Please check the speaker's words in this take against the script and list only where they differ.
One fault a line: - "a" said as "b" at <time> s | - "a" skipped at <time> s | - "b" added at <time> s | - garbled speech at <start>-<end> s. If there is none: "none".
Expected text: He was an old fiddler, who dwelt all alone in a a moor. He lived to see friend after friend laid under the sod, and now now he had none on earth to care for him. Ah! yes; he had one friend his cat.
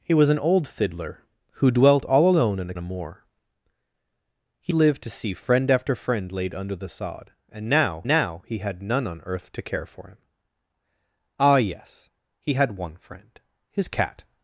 none